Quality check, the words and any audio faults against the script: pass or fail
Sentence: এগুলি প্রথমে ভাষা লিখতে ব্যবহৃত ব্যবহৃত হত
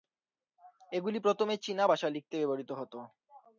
fail